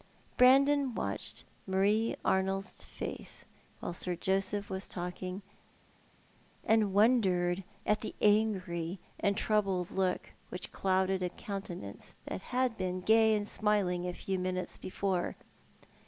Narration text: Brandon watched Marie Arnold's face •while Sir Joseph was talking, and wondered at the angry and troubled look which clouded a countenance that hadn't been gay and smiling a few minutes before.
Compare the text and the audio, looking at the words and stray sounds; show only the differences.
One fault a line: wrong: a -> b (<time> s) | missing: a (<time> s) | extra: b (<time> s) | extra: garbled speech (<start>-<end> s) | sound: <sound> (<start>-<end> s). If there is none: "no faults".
wrong: hadn't -> had (12.4 s)